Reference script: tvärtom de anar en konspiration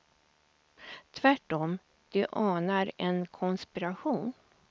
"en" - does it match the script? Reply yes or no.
yes